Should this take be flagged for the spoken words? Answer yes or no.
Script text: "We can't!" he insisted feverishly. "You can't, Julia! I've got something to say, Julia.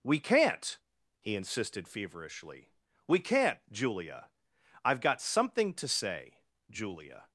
yes